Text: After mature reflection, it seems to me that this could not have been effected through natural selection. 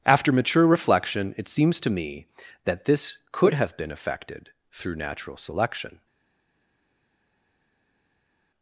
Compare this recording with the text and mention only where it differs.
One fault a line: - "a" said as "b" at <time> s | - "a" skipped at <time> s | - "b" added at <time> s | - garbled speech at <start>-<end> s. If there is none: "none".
- "not" skipped at 3.5 s